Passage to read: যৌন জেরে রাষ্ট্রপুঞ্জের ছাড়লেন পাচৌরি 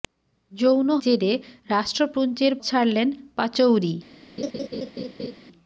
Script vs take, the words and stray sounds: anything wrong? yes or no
yes